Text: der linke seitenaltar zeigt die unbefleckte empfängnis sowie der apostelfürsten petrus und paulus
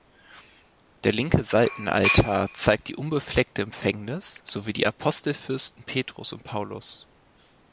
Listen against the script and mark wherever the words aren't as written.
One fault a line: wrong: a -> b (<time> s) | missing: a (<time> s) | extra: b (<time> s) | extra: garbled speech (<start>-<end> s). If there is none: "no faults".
wrong: der -> die (4.7 s)